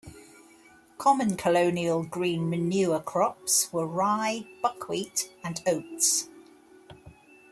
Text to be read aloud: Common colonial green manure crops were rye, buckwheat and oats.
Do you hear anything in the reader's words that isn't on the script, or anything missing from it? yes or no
no